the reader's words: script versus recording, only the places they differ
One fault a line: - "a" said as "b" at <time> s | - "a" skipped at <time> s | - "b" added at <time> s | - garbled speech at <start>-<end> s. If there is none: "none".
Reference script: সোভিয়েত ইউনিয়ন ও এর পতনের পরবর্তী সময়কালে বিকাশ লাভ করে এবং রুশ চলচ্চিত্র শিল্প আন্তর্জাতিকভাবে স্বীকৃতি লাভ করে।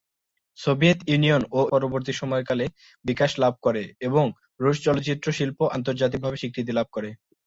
- "এর পতনের" skipped at 1.7 s